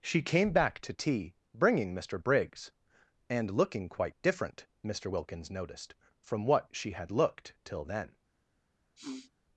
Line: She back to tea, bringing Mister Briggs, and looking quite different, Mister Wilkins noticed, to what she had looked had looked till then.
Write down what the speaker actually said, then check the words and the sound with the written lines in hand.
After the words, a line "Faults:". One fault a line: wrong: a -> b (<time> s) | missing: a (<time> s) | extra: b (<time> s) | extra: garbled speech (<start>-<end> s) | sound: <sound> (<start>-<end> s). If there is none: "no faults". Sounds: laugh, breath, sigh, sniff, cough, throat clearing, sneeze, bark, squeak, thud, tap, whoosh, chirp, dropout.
She came back to tea, bringing Mister Briggs, and looking quite different, Mister Wilkins noticed, from what she had looked till then.
Faults:
extra: came (0.2 s)
wrong: to -> from (6.2 s)
missing: had looked (7.6 s)
sound: sniff (9.0-9.3 s)